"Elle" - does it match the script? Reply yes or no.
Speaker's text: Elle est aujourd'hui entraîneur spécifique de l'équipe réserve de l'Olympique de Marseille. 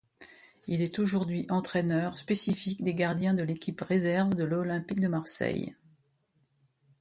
no